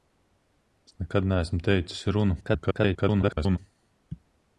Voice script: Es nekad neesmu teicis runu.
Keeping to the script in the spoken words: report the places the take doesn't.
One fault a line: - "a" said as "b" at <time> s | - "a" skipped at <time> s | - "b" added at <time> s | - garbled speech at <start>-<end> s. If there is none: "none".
- garbled speech at 2.4-3.6 s